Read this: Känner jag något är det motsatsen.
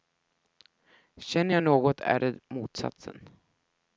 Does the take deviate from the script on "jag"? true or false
false